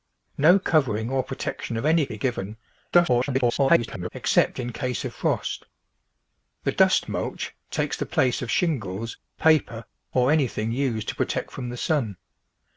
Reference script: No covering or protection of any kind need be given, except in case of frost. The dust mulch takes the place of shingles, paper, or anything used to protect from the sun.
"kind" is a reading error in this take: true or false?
true